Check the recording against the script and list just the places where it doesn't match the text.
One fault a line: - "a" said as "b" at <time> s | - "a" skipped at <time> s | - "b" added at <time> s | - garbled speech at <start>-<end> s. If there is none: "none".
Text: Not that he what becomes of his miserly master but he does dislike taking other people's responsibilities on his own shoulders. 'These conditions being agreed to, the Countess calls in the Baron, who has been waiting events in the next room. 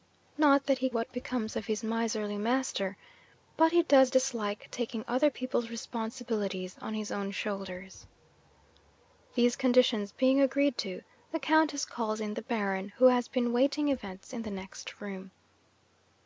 none